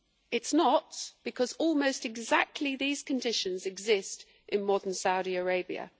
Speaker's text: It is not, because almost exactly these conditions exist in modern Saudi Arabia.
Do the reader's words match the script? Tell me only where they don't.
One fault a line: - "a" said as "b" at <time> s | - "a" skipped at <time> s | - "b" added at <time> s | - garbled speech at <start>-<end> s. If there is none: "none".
none